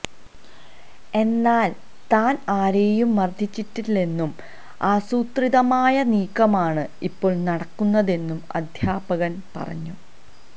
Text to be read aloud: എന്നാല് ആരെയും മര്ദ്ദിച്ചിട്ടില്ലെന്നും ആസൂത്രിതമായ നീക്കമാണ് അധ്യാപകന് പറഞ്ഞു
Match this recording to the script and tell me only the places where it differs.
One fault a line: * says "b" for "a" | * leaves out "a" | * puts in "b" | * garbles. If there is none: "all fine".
* puts in "താന്"
* puts in "ഇപ്പോള് നടക്കുന്നതെന്നും"